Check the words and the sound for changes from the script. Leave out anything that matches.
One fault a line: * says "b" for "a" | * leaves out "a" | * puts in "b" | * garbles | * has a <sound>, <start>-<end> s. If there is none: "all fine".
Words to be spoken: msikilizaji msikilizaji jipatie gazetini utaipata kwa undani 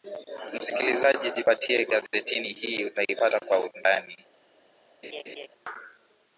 * leaves out "msikilizaji"
* puts in "hii"
* has a laugh, 5.0-5.5 s